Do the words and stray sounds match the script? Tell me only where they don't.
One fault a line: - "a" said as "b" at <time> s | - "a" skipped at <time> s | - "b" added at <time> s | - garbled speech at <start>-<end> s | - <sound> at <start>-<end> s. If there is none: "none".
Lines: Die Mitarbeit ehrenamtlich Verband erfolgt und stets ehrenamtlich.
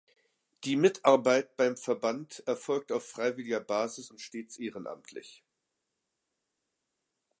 - "ehrenamtlich" said as "beim" at 1.6 s
- "auf freiwilliger Basis" added at 2.9 s